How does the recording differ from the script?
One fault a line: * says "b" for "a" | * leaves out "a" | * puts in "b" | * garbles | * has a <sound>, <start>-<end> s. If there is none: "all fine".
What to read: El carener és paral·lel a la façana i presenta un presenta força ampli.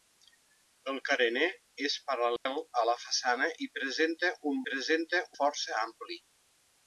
* has a dropout, 2.4-2.5 s